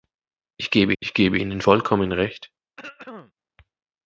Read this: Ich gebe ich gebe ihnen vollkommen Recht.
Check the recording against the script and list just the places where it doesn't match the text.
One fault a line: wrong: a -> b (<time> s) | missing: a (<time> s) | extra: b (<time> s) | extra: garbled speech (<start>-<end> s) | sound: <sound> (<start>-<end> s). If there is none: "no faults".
sound: throat clearing (2.8-3.3 s)